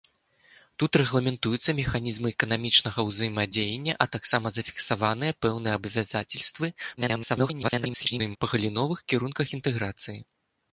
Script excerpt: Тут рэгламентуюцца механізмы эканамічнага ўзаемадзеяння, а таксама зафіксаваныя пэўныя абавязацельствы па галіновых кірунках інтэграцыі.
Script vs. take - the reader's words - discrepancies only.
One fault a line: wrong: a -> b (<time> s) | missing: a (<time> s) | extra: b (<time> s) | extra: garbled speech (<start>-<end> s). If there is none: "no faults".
extra: garbled speech (7.0-8.4 s)